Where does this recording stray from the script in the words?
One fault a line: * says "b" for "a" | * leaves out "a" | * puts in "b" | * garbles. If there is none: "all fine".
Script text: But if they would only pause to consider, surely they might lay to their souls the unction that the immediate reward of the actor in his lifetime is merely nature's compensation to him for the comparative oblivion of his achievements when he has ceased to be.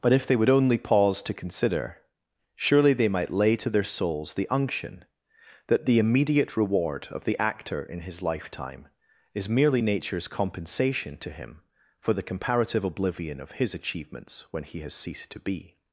all fine